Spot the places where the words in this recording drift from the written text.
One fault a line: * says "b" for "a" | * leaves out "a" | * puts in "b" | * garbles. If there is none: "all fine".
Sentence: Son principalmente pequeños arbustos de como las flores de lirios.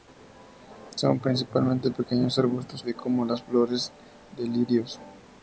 all fine